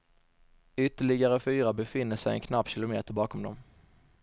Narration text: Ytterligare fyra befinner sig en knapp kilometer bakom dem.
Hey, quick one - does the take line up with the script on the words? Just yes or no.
yes